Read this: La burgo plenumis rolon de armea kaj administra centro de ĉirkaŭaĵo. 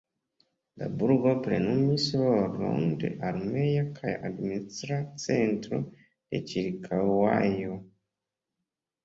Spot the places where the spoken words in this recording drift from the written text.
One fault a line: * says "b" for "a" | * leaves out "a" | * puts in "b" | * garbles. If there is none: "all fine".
all fine